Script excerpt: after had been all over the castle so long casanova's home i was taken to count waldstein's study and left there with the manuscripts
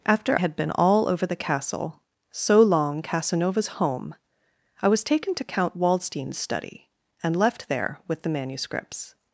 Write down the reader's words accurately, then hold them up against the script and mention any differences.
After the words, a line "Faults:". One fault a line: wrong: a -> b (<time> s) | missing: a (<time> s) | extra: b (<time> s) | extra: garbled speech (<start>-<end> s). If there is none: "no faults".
after had been all over the castle so long casanova's home i was taken to count waldstein's study and left there with the manuscripts
Faults:
no faults